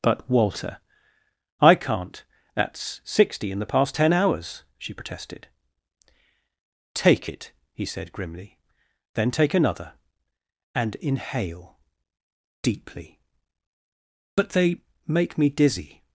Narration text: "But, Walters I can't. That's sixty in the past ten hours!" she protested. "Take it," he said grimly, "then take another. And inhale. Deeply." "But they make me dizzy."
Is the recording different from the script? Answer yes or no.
yes